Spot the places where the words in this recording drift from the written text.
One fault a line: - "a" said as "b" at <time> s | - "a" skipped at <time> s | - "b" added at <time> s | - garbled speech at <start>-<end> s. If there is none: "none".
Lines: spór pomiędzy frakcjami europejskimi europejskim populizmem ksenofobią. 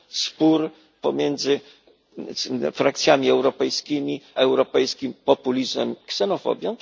none